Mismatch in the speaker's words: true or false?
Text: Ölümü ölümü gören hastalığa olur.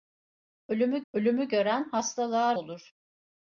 false